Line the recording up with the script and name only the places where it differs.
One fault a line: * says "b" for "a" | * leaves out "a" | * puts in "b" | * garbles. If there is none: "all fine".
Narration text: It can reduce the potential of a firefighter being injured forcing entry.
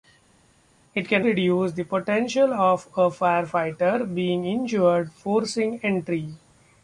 all fine